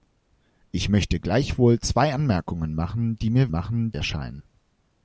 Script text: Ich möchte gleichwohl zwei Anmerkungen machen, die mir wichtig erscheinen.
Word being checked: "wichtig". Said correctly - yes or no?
no